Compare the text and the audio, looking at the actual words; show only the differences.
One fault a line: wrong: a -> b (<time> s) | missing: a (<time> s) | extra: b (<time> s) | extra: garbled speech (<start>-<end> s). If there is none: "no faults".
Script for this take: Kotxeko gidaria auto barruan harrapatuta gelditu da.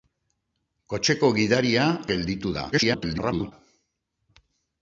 missing: auto barruan harrapatuta (1.8 s)
extra: garbled speech (2.7-3.5 s)